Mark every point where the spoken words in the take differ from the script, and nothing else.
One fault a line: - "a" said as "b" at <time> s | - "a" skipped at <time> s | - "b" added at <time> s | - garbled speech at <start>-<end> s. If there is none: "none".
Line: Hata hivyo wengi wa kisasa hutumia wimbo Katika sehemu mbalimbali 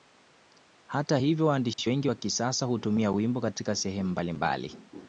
- "waandishi" added at 1.5 s